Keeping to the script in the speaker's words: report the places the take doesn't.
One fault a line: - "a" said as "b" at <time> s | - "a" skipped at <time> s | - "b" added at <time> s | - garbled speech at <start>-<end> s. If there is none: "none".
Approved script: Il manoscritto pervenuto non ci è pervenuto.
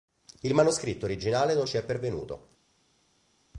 - "pervenuto" said as "originale" at 1.1 s